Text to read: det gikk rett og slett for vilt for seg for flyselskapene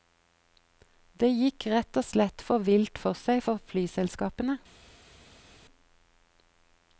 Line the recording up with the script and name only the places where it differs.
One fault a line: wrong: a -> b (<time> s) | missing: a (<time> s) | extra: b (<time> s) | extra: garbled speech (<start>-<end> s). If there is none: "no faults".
no faults